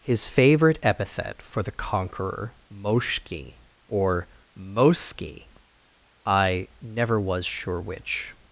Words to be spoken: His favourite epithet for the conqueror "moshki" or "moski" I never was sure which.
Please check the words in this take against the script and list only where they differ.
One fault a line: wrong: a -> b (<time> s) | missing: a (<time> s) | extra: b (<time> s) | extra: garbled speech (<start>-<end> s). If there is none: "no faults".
no faults